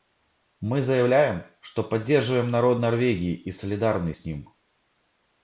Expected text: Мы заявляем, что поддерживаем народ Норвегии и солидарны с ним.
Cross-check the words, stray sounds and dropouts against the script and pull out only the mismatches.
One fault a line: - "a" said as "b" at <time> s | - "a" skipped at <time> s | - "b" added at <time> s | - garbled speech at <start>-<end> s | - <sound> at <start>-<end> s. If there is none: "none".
none